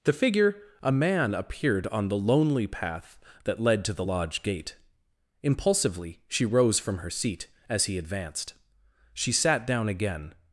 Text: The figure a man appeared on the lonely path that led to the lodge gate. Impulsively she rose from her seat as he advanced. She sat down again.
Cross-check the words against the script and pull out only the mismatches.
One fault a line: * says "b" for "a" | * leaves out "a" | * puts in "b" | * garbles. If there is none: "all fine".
all fine